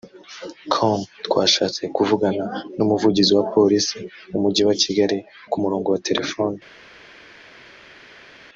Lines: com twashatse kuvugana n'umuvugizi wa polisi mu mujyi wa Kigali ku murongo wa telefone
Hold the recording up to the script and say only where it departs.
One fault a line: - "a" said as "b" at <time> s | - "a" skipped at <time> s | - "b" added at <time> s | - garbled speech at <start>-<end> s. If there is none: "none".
none